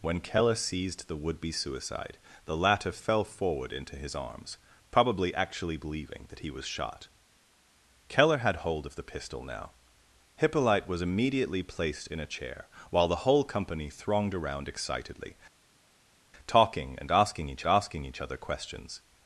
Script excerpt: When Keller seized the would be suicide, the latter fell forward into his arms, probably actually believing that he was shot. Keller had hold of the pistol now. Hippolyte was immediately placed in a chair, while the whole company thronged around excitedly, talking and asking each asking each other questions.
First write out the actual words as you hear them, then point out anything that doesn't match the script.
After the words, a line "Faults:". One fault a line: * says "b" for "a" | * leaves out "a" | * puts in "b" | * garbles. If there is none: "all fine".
When Keller seized the would be suicide, the latter fell forward into his arms, probably actually believing that he was shot. Keller had hold of the pistol now. Hippolyte was immediately placed in a chair, while the whole company thronged around excitedly, talking and asking each asking each other questions.
Faults:
all fine